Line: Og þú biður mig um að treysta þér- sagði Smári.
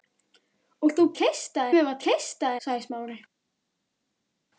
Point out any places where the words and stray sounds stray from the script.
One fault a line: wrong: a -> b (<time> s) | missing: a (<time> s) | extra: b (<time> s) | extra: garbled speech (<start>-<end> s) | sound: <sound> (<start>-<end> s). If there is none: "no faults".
wrong: biður -> treysta (1.2 s)
missing: þér (2.5 s)